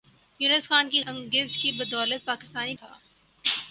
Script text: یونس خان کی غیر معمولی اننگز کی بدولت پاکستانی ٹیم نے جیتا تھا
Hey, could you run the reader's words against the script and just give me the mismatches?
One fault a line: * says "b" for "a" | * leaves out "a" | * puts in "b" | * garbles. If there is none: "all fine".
* leaves out "غیر معمولی"
* leaves out "ٹیم نے جیتا"